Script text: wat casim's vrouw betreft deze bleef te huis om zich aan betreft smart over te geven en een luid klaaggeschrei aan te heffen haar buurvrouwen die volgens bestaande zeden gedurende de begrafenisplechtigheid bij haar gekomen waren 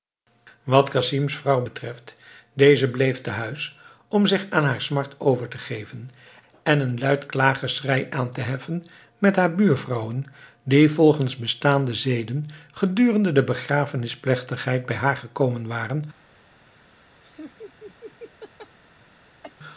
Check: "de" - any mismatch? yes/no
no